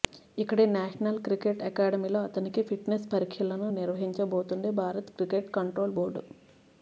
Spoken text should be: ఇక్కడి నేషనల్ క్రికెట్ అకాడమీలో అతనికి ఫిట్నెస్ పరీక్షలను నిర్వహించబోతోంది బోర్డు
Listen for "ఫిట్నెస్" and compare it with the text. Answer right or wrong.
right